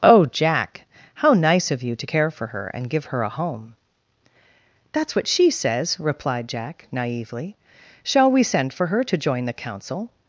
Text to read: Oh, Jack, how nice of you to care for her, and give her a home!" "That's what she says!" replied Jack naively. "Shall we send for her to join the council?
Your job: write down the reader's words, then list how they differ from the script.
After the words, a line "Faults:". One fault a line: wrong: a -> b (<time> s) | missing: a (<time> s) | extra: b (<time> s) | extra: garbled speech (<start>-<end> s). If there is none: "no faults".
Oh, Jack, how nice of you to care for her, and give her a home!" "That's what she says!" replied Jack naively. "Shall we send for her to join the council?
Faults:
no faults